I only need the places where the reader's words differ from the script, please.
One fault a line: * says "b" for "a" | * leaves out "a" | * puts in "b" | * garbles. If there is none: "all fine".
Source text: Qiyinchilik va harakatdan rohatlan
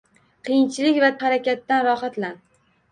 all fine